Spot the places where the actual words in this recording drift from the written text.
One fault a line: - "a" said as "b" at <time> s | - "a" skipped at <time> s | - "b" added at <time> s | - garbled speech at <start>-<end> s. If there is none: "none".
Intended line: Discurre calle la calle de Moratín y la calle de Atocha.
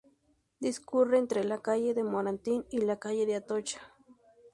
- "calle" said as "entre" at 1.2 s